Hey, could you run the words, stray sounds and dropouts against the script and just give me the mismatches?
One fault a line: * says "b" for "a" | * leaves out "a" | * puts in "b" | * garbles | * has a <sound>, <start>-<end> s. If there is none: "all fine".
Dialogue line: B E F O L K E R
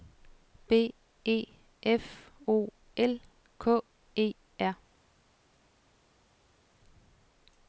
all fine